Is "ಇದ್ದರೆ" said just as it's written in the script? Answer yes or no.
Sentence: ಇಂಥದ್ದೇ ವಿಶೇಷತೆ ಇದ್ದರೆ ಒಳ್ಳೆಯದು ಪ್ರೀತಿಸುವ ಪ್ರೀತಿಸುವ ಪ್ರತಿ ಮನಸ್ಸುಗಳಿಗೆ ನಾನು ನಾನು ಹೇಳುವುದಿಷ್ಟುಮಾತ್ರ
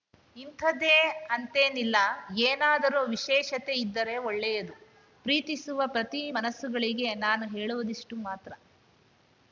yes